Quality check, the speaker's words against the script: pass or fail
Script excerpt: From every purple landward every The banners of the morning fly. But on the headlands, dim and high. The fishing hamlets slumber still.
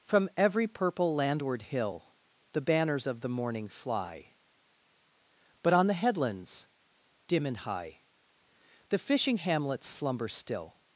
fail